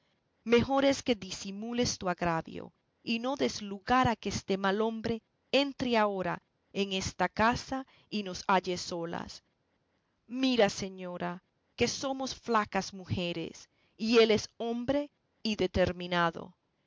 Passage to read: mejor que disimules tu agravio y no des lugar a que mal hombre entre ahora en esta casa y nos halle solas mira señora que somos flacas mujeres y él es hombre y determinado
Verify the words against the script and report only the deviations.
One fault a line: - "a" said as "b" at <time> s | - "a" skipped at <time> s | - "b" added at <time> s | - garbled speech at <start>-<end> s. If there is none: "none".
- "es" added at 0.8 s
- "este" added at 4.3 s